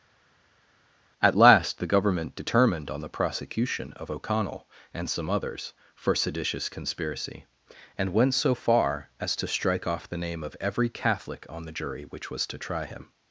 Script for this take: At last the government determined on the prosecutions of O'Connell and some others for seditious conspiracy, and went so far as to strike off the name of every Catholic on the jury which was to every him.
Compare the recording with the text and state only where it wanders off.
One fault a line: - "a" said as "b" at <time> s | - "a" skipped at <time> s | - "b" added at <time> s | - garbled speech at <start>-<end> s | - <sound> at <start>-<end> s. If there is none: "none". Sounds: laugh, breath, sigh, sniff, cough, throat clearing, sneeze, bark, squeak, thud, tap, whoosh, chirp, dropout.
- "prosecutions" said as "prosecution" at 3.1 s
- "every" said as "try" at 12.6 s